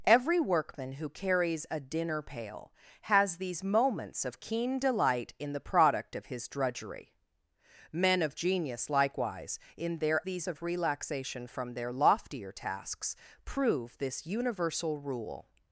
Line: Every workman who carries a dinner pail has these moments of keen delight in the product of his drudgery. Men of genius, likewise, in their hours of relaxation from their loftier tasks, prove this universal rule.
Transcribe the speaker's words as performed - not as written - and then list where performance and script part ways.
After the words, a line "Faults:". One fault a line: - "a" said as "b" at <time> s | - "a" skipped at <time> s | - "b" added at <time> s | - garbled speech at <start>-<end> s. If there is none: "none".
Every workman who carries a dinner pail has these moments of keen delight in the product of his drudgery. Men of genius, likewise, in their these of relaxation from their loftier tasks, prove this universal rule.
Faults:
- "hours" said as "these" at 10.2 s